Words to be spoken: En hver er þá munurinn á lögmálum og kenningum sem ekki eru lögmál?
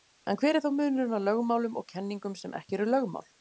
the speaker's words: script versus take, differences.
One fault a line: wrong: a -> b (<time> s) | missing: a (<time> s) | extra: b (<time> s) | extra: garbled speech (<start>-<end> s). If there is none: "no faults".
no faults